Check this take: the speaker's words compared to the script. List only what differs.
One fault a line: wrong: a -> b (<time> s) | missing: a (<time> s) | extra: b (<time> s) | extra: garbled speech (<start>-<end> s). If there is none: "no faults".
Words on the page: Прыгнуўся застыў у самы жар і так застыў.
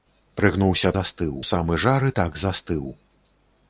no faults